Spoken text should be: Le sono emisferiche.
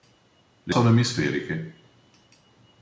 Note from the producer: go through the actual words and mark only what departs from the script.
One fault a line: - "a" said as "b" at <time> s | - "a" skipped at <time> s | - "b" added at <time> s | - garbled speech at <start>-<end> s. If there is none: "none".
none